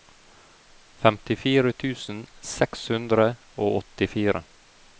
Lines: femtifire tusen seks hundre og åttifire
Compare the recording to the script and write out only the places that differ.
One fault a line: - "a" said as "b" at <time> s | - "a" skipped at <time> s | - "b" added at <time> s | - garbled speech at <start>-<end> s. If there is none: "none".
none